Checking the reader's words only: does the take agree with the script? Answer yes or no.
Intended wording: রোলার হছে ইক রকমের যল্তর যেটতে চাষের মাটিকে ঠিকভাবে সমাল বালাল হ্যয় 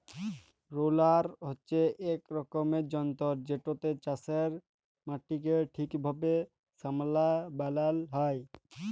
yes